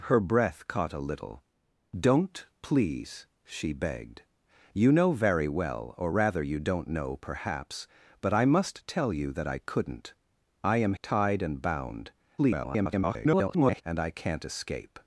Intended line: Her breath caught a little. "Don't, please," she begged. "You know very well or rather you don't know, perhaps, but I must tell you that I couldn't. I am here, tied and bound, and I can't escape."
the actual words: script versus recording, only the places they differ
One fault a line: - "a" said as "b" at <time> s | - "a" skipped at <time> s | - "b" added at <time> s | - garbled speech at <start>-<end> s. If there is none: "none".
- "here" skipped at 10.9 s
- garbled speech at 12.4-13.8 s